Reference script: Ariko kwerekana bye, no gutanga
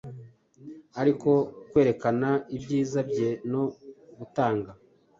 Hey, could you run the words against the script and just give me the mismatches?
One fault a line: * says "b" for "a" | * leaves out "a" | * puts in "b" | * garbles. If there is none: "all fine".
* puts in "ibyiza"